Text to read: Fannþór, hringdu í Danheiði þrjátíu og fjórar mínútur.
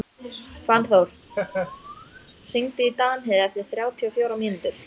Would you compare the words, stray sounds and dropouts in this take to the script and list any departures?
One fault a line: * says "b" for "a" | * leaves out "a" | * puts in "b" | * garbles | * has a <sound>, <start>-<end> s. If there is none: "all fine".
* has a laugh, 1.3-2.3 s
* puts in "eftir"